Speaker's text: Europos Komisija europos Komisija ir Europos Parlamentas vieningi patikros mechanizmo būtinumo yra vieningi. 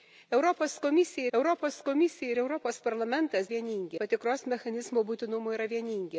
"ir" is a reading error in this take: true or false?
false